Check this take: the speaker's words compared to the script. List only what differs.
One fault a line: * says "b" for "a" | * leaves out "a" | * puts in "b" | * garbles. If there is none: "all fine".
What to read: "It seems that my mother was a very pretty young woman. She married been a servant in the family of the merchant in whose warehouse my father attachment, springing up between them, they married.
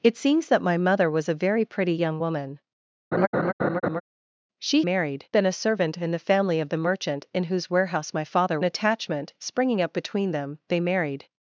all fine